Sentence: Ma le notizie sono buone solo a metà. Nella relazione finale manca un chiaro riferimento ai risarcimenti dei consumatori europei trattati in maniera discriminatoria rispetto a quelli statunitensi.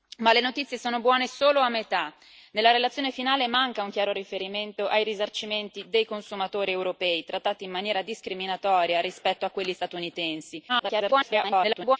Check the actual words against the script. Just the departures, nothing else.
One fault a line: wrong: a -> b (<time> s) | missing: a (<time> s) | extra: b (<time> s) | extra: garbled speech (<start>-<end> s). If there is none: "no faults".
extra: garbled speech (10.7-12.0 s)